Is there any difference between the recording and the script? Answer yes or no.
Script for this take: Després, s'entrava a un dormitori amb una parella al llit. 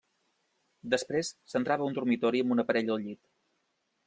no